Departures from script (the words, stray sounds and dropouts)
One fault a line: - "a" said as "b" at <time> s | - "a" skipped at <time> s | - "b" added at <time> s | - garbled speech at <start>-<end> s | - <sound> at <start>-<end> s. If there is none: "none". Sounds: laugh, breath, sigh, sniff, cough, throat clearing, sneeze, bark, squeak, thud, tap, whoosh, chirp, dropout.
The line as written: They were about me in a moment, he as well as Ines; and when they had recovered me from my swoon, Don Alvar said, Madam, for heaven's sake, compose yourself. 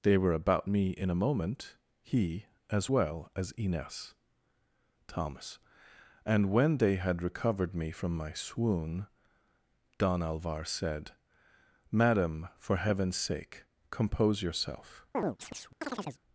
- "thomas" added at 5.1 s
- chirp at 15.1-16.2 s